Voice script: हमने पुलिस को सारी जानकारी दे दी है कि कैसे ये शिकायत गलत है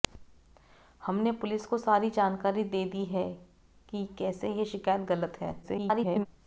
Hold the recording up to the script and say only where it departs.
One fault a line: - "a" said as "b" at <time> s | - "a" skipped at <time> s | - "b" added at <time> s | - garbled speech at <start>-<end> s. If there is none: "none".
- garbled speech at 5.6-6.3 s